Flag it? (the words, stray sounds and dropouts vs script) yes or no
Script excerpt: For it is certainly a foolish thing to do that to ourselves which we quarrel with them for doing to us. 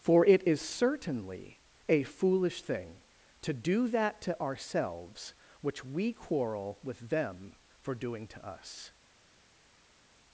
no